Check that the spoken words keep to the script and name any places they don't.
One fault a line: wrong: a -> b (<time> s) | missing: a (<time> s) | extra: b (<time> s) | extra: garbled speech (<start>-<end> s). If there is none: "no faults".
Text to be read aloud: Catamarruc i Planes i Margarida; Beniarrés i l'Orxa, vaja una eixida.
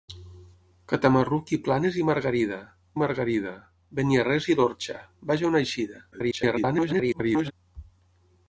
extra: Margarida (3.0 s)
extra: garbled speech (6.1-7.5 s)